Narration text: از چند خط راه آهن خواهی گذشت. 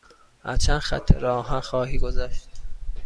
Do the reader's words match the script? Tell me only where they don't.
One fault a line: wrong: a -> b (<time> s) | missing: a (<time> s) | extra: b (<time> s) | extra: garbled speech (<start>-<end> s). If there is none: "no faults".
no faults